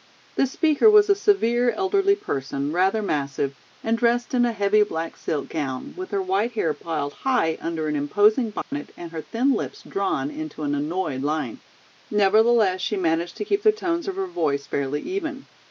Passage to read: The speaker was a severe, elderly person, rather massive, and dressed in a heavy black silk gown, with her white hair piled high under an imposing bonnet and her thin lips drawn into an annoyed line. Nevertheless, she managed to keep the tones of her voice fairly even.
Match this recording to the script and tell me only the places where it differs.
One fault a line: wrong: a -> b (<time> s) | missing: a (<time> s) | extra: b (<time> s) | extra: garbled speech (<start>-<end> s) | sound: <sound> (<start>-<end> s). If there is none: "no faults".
sound: dropout (8.6-8.7 s)